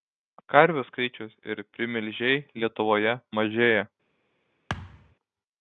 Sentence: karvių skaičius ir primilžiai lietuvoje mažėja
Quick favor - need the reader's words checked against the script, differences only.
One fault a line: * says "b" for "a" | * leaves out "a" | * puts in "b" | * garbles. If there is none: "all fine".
all fine